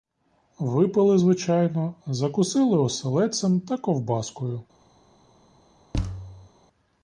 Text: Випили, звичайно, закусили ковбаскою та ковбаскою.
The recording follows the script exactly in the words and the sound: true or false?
false